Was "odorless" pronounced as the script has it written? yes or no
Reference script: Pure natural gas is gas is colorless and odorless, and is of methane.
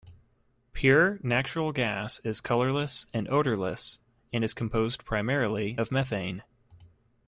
yes